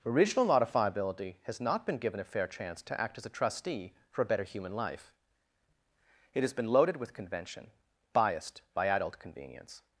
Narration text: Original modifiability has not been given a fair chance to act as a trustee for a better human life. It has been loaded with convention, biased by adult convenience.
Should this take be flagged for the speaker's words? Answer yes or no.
no